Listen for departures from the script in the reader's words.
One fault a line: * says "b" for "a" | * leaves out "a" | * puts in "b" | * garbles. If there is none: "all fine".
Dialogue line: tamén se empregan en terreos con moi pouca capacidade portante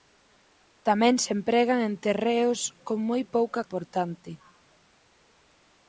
* leaves out "capacidade"